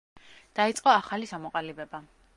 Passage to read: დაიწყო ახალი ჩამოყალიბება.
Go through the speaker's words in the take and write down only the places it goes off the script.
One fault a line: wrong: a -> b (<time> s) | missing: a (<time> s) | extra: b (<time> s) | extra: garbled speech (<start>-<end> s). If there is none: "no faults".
no faults